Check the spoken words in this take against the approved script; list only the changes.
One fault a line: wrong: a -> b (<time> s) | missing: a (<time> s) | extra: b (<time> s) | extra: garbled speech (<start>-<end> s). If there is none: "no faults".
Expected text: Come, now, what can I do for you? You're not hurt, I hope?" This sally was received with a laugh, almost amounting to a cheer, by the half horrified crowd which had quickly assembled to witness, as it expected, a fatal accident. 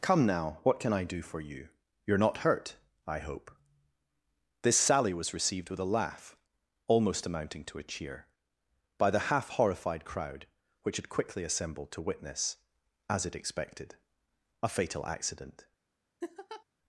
no faults